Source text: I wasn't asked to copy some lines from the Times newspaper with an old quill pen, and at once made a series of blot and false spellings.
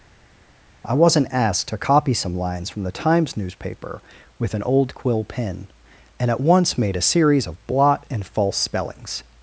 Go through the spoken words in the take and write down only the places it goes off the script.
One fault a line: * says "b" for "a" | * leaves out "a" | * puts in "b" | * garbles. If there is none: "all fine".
all fine